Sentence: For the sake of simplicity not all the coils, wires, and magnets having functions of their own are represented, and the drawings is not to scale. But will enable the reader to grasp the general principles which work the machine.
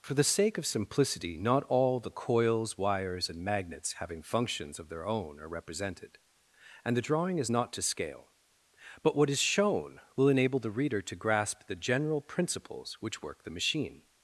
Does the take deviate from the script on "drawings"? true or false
true